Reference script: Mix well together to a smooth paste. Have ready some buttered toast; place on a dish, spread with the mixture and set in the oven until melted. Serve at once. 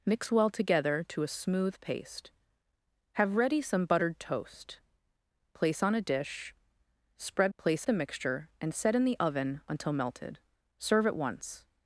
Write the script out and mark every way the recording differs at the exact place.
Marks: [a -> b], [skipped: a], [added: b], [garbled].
Mix well together to a smooth paste. Have ready some buttered toast; place on a dish, spread [with -> place] the mixture and set in the oven until melted. Serve at once.